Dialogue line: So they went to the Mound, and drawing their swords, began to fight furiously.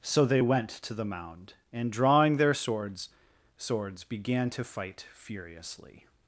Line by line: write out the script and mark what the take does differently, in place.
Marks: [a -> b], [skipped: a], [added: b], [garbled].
So they went to the Mound, and drawing their swords, [added: swords] began to fight furiously.